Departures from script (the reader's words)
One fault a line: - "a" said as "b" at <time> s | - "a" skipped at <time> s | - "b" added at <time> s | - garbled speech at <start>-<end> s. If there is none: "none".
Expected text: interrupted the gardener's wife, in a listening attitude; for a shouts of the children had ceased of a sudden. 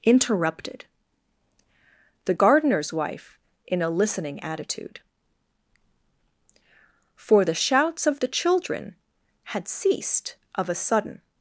- "a" said as "the" at 7.4 s